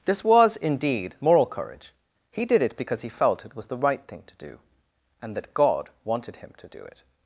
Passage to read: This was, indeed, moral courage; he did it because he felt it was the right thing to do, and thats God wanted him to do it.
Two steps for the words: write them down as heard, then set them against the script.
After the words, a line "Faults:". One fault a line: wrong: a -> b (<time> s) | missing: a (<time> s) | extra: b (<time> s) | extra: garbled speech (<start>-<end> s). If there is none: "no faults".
This was, indeed, moral courage; he did it because he felt it was the right thing to do, and that God wanted him to do it.
Faults:
wrong: thats -> that (5.4 s)